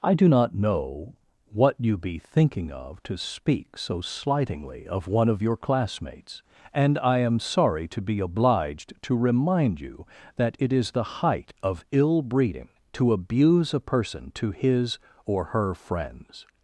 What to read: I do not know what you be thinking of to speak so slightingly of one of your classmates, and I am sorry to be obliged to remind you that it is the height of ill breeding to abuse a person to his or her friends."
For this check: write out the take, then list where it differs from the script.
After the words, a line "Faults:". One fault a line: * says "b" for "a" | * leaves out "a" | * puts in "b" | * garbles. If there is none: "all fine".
I do not know what you be thinking of to speak so slightingly of one of your classmates, and I am sorry to be obliged to remind you that it is the height of ill breeding to abuse a person to his or her friends."
Faults:
all fine